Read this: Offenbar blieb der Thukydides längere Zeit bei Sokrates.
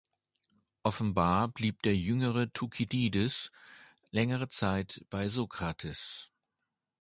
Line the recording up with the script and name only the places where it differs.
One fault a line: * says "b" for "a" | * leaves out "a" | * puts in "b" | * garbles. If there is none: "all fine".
* puts in "jüngere"